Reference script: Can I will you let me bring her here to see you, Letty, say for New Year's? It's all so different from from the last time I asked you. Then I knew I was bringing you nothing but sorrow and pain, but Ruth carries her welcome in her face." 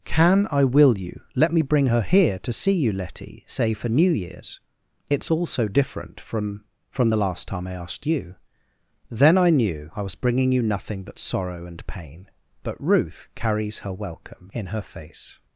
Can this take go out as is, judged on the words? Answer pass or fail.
pass